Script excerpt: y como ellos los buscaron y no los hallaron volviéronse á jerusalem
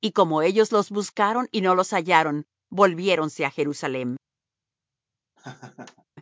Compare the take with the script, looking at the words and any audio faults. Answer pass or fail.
fail